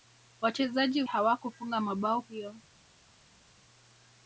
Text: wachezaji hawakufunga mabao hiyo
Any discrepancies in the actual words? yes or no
no